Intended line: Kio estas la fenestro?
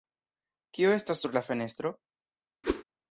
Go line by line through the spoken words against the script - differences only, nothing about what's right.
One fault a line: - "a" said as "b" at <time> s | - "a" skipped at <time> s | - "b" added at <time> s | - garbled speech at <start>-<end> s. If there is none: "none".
- "sur" added at 1.2 s